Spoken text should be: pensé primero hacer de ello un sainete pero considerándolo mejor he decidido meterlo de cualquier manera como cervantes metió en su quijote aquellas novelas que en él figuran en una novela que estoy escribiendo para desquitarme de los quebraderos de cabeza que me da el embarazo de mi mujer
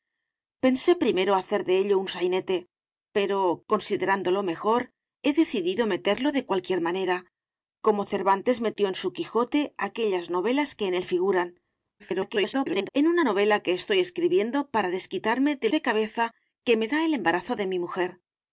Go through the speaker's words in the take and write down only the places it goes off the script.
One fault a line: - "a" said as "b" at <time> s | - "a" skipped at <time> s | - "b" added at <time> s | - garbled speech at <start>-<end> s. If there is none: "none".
- garbled speech at 12.0-12.9 s
- "los quebraderos" skipped at 15.7 s